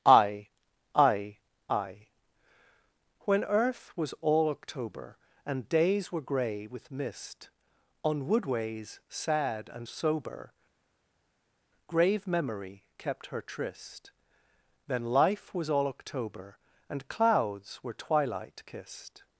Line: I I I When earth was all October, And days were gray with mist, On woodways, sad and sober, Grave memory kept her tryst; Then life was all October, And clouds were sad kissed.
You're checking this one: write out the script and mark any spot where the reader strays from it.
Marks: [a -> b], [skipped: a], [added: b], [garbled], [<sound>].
I I I When earth was all October, And days were gray with mist, On woodways, sad and sober, Grave memory kept her tryst; Then life was all October, And clouds were [sad -> twilight] kissed.